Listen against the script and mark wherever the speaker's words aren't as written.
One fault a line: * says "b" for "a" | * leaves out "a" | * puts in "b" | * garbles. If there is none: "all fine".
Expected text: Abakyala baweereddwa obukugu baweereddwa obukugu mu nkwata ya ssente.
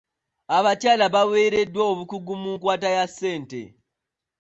* leaves out "baweereddwa obukugu"